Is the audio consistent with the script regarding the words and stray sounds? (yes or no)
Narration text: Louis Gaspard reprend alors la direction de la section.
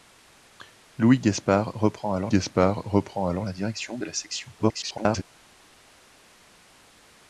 no